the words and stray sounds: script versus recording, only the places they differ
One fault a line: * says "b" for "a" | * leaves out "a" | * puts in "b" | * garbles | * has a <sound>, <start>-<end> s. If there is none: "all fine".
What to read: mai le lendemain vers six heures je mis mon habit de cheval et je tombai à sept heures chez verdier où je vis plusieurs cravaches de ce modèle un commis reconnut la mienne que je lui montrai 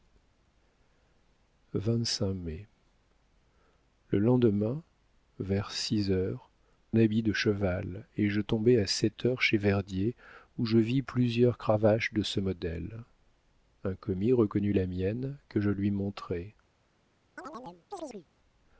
* leaves out "je mis mon"
* has a chirp, 17.4-18.3 s